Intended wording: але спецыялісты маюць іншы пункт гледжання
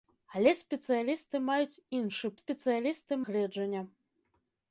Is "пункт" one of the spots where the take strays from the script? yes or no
yes